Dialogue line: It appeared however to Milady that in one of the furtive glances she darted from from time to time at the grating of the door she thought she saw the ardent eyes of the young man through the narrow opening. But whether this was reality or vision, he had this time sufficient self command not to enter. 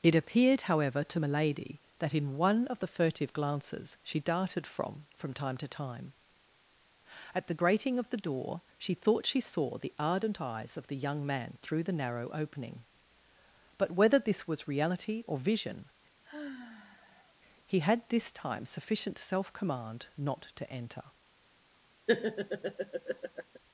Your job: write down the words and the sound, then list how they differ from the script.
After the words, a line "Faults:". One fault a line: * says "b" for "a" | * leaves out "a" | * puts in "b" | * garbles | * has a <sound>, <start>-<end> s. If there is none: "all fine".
It appeared however to Milady that in one of the furtive glances she darted from from time to time at the grating of the door she thought she saw the ardent eyes of the young man through the narrow opening. But whether this was reality or vision, he had this time sufficient self command not to enter.
Faults:
* has a sigh, 16.2-17.4 s
* has a laugh, 22.1-23.6 s